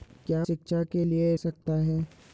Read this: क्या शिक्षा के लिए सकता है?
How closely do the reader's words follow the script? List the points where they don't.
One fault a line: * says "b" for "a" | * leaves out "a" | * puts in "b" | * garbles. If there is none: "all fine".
all fine